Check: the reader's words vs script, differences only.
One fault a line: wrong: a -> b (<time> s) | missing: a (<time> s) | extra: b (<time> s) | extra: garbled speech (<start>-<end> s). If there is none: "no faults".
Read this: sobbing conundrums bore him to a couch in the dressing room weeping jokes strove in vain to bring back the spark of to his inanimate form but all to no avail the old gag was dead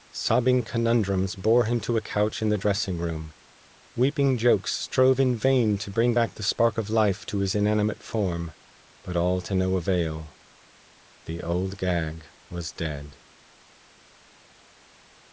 extra: life (6.9 s)